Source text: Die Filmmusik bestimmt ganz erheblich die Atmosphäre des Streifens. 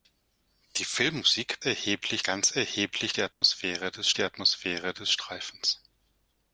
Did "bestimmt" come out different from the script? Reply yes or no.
yes